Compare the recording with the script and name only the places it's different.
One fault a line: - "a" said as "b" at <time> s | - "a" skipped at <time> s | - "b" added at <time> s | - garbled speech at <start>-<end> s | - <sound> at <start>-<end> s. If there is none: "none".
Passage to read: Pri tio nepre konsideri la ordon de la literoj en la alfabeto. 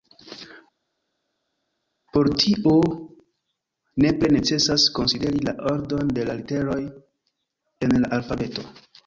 - "Pri" said as "Por" at 2.2 s
- "necesas" added at 4.4 s